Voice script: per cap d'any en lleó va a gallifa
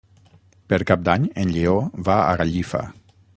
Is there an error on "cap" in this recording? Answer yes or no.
no